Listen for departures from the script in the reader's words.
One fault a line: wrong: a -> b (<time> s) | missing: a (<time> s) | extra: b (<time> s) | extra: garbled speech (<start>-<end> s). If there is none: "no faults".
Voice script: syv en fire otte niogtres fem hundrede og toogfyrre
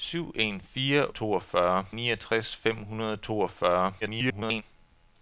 wrong: otte -> toogfyrre (1.1 s)
extra: garbled speech (4.0-4.6 s)